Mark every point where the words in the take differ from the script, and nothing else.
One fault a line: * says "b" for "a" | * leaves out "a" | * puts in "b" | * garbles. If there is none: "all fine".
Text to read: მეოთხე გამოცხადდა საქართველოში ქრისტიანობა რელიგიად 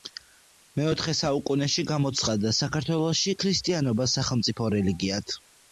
* puts in "საუკუნეში"
* puts in "სახელმწიფო"